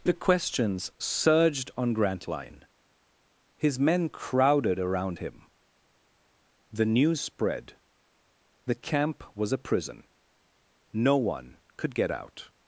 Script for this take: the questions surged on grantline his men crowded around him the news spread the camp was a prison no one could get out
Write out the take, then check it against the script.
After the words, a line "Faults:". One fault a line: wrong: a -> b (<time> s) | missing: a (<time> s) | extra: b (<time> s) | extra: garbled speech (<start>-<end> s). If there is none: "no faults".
the questions surged on grantline his men crowded around him the news spread the camp was a prison no one could get out
Faults:
no faults